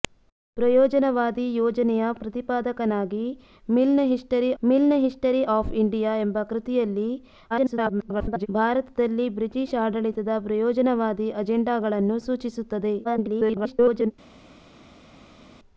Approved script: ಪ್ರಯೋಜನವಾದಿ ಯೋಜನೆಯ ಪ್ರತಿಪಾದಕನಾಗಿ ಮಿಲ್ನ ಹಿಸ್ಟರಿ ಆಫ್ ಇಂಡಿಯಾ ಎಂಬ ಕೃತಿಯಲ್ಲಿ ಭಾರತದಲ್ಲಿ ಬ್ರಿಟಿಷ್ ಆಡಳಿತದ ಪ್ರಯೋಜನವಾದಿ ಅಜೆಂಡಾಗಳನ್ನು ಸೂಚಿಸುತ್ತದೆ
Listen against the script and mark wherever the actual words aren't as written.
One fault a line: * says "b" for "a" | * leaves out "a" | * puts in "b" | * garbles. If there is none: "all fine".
* puts in "ಮಿಲ್ನ ಹಿಸ್ಟರಿ"
* garbles
* garbles